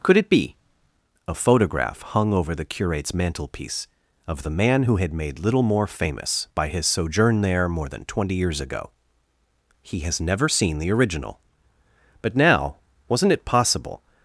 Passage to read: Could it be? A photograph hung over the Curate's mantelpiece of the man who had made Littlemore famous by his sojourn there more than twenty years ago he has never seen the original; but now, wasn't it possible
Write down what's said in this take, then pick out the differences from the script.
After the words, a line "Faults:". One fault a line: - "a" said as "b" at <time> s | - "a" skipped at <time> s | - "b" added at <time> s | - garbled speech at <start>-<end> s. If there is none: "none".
Could it be? A photograph hung over the Curate's mantelpiece of the man who had made Littlemore famous by his sojourn there more than twenty years ago he has never seen the original; but now, wasn't it possible
Faults:
none